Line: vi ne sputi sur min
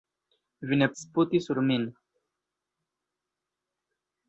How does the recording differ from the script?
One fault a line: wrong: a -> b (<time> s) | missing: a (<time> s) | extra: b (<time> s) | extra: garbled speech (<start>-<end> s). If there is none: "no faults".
no faults